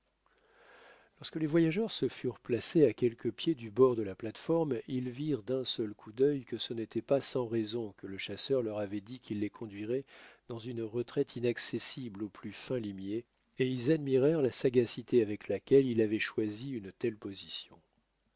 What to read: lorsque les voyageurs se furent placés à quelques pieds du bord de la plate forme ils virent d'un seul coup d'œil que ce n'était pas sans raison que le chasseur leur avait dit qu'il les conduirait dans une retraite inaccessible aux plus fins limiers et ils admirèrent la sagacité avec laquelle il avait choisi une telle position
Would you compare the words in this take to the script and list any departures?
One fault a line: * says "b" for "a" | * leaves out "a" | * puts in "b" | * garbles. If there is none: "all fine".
all fine